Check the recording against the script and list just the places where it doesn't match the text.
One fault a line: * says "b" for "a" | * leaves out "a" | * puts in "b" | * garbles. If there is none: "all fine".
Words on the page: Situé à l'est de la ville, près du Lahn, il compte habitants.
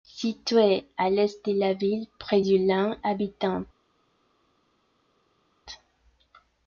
* leaves out "il compte"